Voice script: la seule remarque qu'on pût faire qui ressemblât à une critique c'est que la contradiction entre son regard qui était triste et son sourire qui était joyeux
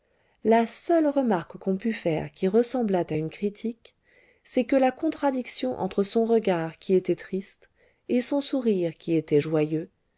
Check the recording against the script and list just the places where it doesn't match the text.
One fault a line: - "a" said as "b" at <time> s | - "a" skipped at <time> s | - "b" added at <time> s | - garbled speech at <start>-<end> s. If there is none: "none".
none